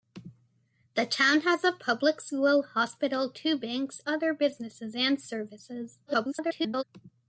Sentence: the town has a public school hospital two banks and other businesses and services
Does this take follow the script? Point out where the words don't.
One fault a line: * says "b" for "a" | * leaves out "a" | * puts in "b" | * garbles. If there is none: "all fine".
* leaves out "and"
* garbles